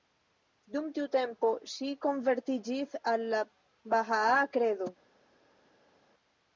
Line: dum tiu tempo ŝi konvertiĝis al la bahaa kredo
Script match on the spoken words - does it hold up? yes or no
yes